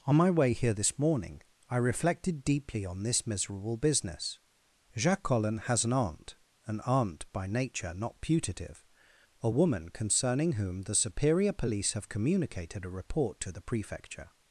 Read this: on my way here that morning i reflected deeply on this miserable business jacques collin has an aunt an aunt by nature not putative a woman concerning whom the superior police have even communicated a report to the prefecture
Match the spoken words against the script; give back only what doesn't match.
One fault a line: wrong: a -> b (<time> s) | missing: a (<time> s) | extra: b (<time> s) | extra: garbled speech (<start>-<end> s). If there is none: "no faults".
wrong: that -> this (0.7 s)
missing: even (12.1 s)